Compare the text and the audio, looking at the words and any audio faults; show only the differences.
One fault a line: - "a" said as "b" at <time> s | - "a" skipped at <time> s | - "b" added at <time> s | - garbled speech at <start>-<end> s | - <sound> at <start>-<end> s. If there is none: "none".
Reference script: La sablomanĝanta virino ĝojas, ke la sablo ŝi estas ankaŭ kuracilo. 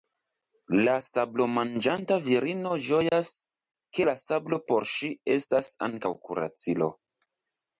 - dropout at 3.1-3.1 s
- "por" added at 4.7 s